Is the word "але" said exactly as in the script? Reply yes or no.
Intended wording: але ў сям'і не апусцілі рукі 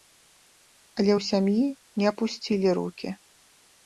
yes